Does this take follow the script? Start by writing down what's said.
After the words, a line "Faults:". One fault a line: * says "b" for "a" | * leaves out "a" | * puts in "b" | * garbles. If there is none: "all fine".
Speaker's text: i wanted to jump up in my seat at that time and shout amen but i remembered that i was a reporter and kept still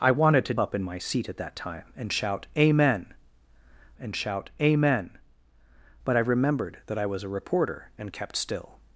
i wanted to up in my seat at that time and shout amen and shout amen but i remembered that i was a reporter and kept still
Faults:
* leaves out "jump"
* puts in "and shout amen"